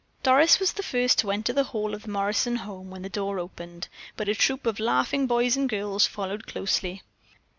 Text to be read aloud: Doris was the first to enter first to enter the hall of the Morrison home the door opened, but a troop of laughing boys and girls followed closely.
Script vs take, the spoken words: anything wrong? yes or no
yes